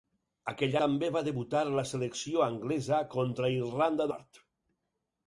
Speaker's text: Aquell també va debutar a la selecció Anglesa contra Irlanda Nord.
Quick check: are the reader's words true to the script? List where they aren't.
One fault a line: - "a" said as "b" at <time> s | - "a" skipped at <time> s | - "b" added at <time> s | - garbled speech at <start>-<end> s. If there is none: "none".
none